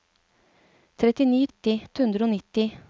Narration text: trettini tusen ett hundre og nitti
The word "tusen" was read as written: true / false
false